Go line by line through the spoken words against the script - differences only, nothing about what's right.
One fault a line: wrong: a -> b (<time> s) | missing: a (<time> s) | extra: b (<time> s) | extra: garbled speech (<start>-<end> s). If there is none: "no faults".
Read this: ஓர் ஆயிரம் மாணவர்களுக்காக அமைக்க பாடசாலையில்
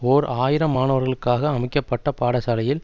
extra: பட்ட (1.8 s)